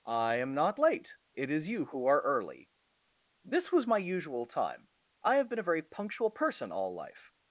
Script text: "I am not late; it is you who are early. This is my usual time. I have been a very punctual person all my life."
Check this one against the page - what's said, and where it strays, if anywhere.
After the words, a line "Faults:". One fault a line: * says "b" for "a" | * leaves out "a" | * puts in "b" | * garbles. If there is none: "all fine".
"I am not late; it is you who are early. This was my usual time. I have been a very punctual person all life."
Faults:
* says "was" for "is"
* leaves out "my"